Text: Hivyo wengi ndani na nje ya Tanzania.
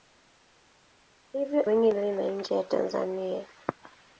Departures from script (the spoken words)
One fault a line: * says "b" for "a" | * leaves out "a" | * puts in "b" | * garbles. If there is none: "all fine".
all fine